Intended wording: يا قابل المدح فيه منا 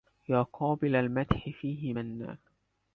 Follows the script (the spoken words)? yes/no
yes